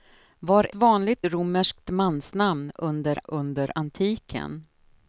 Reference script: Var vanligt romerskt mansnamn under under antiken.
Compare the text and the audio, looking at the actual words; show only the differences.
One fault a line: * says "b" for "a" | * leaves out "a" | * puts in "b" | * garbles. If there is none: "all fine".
all fine